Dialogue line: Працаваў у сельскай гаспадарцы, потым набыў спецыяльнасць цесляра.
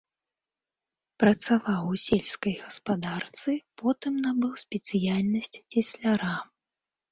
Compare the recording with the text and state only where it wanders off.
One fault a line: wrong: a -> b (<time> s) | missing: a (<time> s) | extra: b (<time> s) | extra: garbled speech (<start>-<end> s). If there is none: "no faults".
no faults